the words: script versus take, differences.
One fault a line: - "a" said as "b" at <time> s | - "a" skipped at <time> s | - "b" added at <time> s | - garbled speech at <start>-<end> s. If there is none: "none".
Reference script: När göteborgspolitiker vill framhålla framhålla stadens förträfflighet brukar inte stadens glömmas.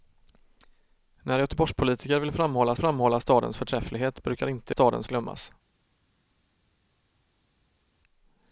none